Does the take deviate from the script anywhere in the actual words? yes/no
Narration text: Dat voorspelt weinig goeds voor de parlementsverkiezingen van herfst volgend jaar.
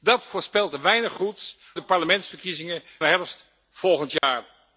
yes